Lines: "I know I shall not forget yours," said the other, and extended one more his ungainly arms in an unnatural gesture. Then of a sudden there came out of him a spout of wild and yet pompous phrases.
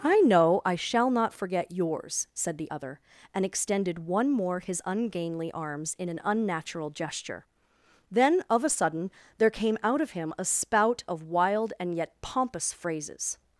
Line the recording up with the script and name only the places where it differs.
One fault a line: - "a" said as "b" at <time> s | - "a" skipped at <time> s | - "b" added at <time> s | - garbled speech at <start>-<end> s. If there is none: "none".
none